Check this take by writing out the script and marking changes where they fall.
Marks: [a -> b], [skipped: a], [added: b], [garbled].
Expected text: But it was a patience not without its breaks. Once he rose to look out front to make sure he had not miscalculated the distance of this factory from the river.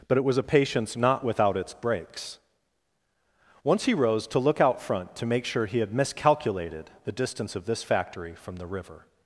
But it was a patience not without its breaks. Once he rose to look out front to make sure he had [skipped: not] miscalculated the distance of this factory from the river.